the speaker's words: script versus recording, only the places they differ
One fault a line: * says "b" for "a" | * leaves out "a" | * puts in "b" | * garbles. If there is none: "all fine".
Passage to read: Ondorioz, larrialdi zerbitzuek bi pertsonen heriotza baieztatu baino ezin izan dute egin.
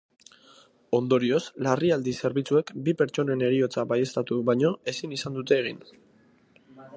all fine